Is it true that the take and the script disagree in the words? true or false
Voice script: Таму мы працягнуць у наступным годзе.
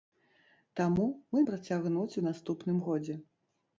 false